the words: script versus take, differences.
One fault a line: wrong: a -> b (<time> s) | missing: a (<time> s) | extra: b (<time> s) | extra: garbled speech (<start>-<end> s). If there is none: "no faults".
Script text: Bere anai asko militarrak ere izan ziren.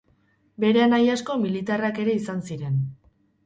no faults